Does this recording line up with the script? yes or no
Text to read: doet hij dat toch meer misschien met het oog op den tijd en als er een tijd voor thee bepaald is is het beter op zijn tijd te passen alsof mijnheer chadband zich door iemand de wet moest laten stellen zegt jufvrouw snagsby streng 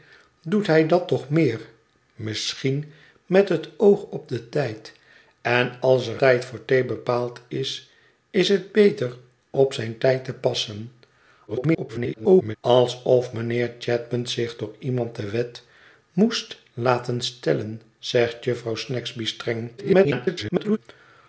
no